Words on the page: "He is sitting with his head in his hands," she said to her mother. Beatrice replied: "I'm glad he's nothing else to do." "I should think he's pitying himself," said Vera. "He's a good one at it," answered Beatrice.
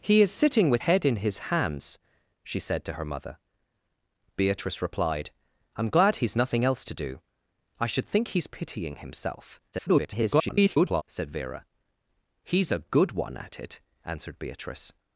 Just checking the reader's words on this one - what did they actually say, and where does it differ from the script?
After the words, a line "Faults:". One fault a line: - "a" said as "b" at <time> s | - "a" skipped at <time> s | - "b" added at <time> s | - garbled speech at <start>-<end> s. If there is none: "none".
"He is sitting with head in his hands," she said to her mother. Beatrice replied: "I'm glad he's nothing else to do." "I should think he's pitying himself," [garbled] said Vera. "He's a good one at it," answered Beatrice.
Faults:
- "his" skipped at 0.8 s
- garbled speech at 9.7-11.0 s